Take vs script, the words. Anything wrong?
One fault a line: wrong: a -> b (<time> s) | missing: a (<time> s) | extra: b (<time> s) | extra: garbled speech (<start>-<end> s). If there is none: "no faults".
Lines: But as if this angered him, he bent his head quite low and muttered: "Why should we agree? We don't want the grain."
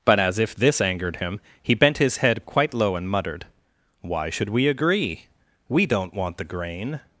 no faults